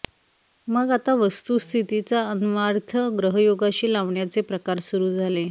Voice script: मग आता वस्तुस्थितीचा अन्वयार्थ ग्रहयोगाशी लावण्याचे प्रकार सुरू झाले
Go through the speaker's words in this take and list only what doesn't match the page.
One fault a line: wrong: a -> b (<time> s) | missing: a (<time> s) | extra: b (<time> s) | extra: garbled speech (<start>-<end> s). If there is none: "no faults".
no faults